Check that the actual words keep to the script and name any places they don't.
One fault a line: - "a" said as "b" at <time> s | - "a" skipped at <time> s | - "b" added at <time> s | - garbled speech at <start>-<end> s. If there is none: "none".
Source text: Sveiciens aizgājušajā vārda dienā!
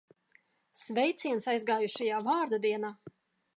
none